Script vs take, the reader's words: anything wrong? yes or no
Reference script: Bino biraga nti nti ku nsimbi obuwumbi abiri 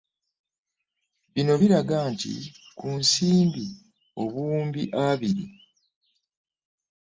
yes